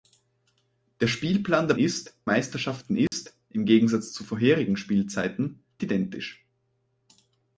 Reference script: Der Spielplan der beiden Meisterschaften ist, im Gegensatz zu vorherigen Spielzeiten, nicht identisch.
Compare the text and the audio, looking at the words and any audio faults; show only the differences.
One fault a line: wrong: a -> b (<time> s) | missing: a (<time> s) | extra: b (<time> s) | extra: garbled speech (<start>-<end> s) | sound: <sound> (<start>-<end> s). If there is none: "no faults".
wrong: beiden -> ist (1.8 s)
sound: dropout (3.1-3.1 s)
missing: nicht (5.6 s)